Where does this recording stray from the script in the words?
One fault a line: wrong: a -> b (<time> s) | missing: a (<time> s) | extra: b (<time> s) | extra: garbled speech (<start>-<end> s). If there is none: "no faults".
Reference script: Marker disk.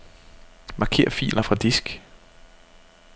extra: filer fra (1.1 s)